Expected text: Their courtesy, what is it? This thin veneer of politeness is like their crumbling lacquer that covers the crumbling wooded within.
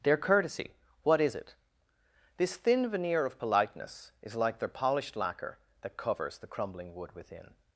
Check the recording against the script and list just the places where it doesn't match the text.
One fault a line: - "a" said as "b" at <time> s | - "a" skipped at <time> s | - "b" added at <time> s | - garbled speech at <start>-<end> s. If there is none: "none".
- "crumbling" said as "polished" at 4.7 s
- "wooded" said as "wood" at 6.9 s